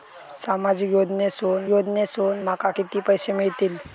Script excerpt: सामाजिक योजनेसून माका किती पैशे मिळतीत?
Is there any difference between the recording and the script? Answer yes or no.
yes